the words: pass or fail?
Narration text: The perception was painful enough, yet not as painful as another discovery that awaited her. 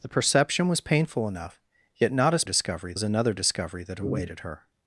fail